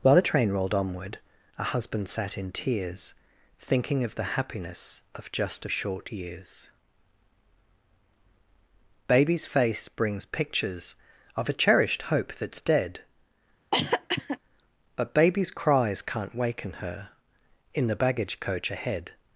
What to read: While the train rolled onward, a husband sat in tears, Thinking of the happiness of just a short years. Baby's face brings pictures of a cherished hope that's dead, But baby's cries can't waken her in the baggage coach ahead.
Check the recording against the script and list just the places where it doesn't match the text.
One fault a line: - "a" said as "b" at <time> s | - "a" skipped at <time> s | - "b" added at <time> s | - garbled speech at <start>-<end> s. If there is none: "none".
none